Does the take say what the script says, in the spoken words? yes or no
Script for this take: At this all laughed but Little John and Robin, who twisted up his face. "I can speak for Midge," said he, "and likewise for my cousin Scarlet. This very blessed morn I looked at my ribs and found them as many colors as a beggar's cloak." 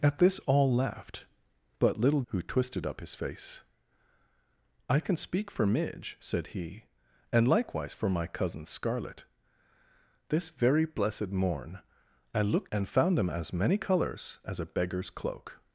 no